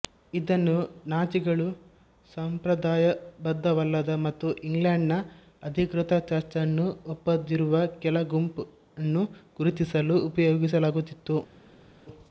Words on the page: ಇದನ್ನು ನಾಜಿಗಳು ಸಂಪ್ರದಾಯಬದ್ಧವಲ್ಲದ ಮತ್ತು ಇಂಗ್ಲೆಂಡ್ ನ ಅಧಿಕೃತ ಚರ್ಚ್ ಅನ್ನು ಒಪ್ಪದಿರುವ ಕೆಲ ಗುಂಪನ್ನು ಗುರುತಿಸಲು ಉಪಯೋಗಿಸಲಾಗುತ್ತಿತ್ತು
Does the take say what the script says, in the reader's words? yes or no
yes